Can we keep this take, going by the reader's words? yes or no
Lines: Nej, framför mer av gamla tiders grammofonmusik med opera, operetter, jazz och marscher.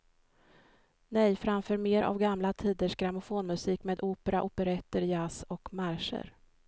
yes